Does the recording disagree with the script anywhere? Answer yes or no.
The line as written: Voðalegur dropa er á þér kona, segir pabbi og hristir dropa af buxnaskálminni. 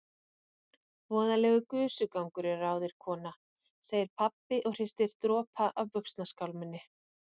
yes